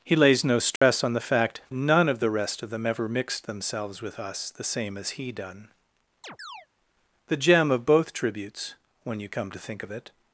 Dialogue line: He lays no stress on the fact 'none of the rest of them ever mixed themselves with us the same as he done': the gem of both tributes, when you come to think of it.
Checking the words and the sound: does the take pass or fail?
fail